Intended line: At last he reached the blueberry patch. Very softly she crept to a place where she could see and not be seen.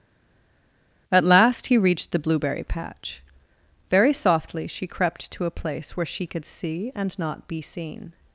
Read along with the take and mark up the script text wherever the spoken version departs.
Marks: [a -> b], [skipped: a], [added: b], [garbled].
At last he reached the blueberry patch. Very softly she crept to a place where she could see and not be seen.